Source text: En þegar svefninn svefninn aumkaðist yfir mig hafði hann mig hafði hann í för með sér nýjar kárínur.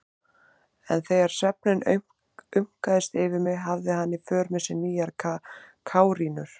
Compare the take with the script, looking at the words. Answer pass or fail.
fail